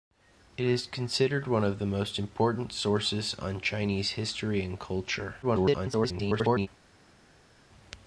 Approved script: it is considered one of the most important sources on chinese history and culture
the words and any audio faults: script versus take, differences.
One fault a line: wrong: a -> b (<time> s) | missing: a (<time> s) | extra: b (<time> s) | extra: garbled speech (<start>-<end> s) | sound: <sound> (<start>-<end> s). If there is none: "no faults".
extra: garbled speech (5.4-6.7 s)